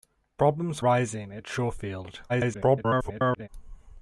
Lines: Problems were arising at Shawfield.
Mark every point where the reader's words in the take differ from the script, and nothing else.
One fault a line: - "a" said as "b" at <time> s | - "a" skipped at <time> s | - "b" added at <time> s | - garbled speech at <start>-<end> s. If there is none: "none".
- "were" skipped at 0.8 s
- garbled speech at 2.3-3.5 s